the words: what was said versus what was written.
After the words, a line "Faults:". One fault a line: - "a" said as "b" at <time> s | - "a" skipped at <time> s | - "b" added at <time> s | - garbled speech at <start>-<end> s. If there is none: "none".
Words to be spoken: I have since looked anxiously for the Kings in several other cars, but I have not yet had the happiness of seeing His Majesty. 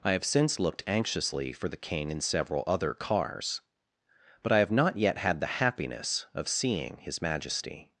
I have since looked anxiously for the King in several other cars, but I have not yet had the happiness of seeing His Majesty.
Faults:
- "Kings" said as "King" at 1.8 s